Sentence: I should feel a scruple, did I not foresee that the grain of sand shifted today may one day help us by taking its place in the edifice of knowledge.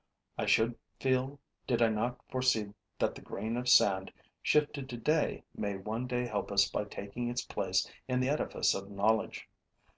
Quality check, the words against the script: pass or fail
fail